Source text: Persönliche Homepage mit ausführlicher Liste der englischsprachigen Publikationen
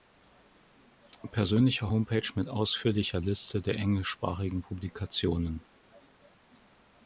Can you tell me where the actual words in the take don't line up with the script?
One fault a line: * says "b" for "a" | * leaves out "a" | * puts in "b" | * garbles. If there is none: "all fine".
all fine